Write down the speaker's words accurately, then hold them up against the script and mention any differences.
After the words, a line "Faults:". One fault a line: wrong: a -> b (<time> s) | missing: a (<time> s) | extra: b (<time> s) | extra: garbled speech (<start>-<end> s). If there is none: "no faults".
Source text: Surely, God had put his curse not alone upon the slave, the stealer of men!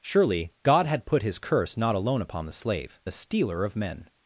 Surely, God had put his curse not alone upon the slave, the stealer of men!
Faults:
no faults